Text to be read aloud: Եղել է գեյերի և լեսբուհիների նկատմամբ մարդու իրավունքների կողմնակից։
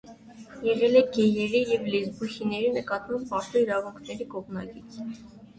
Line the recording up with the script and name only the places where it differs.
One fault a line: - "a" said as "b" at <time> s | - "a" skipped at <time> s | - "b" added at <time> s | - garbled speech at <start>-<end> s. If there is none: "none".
none